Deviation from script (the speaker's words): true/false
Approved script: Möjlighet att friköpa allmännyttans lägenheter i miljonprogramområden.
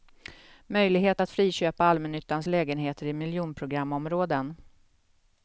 false